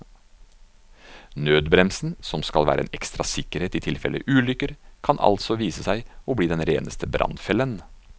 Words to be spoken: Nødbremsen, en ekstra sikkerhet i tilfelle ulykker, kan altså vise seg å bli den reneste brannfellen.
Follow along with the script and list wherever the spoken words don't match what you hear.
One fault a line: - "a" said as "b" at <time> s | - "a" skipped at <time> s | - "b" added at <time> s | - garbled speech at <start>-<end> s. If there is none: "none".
- "som skal være" added at 2.2 s